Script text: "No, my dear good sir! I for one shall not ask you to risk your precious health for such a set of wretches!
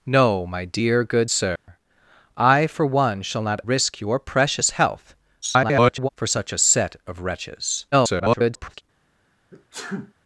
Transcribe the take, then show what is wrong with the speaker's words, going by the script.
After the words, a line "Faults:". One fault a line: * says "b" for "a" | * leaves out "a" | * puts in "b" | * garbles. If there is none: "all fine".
"No, my dear good sir! I for one shall not risk your precious health [garbled] for such a set of wretches! [garbled]
Faults:
* leaves out "ask you to"
* garbles
* garbles